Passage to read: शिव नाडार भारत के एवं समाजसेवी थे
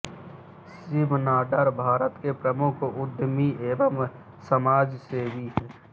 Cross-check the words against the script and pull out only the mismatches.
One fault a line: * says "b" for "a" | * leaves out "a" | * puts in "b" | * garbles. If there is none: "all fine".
* puts in "प्रमुख उद्यमी"
* says "हैं" for "थे"